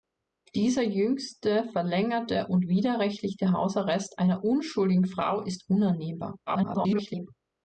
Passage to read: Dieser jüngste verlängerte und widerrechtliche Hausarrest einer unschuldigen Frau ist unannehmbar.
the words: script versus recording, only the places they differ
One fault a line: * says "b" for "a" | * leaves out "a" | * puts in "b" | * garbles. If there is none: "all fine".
* garbles